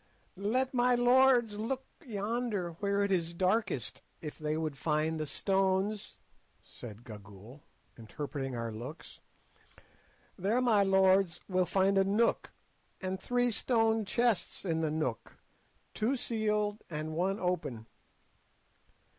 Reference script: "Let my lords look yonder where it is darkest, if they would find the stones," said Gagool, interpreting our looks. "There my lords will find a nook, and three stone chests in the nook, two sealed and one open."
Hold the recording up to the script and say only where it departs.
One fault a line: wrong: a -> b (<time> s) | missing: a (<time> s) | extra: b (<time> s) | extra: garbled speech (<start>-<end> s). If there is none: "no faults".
no faults